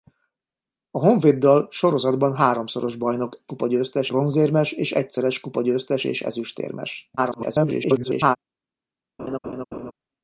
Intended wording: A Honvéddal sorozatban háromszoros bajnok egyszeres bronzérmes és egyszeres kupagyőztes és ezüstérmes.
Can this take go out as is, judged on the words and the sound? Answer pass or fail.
fail